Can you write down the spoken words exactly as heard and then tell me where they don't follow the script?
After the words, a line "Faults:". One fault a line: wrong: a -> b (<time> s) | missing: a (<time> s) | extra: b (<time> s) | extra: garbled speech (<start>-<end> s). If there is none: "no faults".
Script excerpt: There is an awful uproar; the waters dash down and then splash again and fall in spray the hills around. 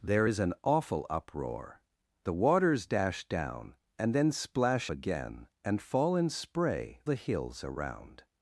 There is an awful uproar; the waters dash down and then splash again and fall in spray the hills around.
Faults:
no faults